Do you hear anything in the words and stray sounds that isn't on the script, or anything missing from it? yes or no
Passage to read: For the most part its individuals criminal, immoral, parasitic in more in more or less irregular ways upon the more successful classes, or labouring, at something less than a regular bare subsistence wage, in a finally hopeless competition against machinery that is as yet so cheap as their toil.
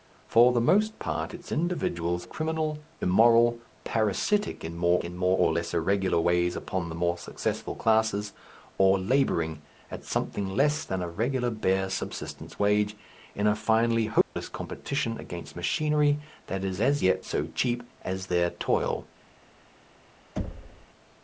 yes